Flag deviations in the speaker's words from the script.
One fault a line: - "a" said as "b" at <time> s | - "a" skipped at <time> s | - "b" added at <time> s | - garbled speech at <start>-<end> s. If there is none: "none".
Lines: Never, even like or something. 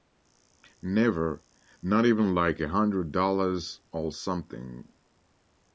- "not" added at 1.8 s
- "a hundred dollars" added at 2.6 s